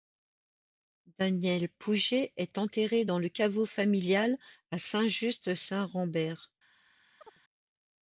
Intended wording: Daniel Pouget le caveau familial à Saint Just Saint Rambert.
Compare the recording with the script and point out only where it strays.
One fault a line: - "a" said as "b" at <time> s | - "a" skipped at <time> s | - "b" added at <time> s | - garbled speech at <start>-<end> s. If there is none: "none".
- "est enterré dans" added at 2.4 s